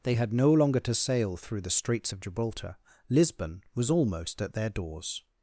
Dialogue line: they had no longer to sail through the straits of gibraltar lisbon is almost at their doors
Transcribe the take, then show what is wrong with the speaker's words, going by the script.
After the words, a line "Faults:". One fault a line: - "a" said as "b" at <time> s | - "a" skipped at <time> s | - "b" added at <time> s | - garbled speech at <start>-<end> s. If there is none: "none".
they had no longer to sail through the straits of gibraltar lisbon was almost at their doors
Faults:
- "is" said as "was" at 3.7 s